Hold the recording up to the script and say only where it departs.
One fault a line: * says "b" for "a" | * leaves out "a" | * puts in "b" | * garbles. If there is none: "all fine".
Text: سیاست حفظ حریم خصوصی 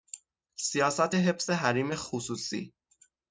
all fine